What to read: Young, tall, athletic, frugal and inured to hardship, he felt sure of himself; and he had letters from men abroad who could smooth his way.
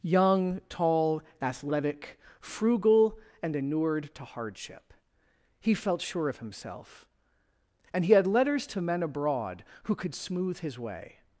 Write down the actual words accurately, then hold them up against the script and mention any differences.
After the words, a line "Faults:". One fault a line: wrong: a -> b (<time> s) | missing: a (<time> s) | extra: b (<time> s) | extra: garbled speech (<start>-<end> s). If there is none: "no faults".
Young, tall, athletic, frugal and inured to hardship, he felt sure of himself; and he had letters to men abroad who could smooth his way.
Faults:
wrong: from -> to (8.7 s)